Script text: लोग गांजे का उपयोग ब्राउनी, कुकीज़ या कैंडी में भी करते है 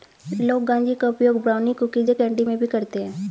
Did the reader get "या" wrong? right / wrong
right